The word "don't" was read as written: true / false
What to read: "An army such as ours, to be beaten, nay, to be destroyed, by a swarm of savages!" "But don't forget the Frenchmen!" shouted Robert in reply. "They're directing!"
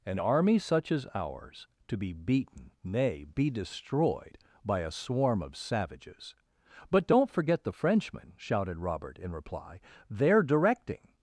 true